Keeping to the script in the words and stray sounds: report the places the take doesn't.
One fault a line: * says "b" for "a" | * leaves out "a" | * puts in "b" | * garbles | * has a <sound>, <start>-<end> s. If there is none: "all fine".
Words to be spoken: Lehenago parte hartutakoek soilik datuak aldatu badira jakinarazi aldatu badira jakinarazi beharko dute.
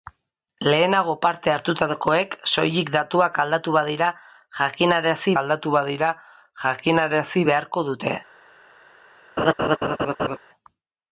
* has a laugh, 9.4-10.4 s